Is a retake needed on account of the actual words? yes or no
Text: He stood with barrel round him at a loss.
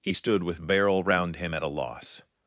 no